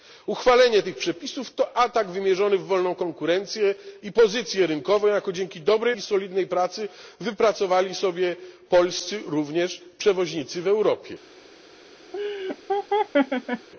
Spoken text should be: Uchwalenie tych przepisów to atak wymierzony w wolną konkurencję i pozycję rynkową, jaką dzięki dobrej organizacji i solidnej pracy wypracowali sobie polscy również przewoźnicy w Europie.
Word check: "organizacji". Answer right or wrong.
wrong